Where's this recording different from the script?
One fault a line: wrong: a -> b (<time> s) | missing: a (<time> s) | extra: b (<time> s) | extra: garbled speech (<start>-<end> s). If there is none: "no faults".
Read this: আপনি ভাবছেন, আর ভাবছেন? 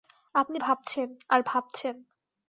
no faults